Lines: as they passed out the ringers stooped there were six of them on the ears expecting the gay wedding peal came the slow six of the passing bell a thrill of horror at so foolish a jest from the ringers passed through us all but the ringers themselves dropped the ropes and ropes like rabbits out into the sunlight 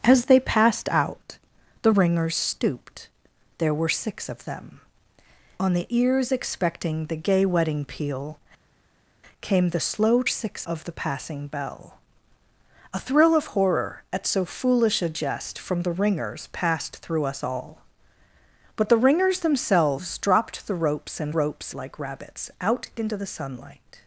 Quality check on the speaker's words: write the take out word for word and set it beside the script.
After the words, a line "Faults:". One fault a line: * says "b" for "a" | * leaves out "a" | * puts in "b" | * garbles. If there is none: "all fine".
as they passed out the ringers stooped there were six of them on the ears expecting the gay wedding peal came the slow six of the passing bell a thrill of horror at so foolish a jest from the ringers passed through us all but the ringers themselves dropped the ropes and ropes like rabbits out into the sunlight
Faults:
all fine